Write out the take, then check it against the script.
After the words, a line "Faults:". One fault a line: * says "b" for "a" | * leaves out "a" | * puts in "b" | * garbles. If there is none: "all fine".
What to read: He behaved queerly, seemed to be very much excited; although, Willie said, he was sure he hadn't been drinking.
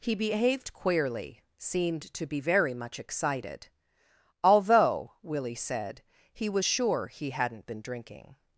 He behaved queerly, seemed to be very much excited; although, Willie said, he was sure he hadn't been drinking.
Faults:
all fine